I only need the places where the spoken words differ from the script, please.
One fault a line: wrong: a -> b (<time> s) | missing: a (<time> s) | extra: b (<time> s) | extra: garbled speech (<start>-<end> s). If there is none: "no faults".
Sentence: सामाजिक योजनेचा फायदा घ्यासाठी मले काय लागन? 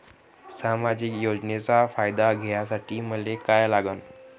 no faults